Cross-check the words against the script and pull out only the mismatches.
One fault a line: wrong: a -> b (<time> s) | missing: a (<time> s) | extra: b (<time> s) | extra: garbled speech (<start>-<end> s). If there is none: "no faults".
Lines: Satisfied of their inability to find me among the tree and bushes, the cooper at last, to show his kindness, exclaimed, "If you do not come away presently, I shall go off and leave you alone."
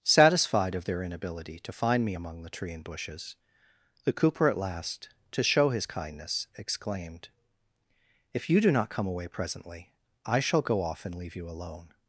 no faults